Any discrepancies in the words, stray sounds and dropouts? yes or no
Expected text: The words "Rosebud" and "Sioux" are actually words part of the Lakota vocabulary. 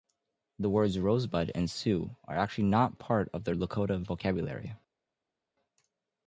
yes